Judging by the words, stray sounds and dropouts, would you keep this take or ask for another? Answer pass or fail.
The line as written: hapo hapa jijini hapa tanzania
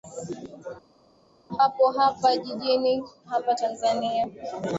pass